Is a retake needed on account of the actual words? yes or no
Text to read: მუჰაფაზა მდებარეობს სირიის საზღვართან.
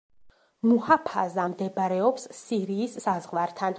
no